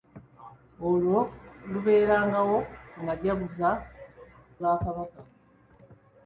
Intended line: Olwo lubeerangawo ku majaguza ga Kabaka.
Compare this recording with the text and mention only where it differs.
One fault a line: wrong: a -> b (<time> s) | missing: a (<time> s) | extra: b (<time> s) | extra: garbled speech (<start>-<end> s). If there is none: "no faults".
no faults